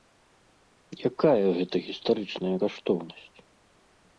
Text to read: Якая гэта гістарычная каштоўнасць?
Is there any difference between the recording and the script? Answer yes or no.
no